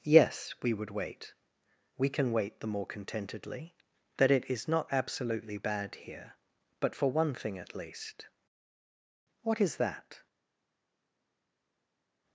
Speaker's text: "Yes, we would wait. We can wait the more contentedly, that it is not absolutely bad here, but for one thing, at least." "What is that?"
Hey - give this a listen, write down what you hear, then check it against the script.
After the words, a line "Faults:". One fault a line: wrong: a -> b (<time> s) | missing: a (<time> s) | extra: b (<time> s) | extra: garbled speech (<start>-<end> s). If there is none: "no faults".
"Yes, we would wait. We can wait the more contentedly, that it is not absolutely bad here, but for one thing, at least." "What is that?"
Faults:
no faults